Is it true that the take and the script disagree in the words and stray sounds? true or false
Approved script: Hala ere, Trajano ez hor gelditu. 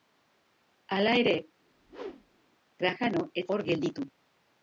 true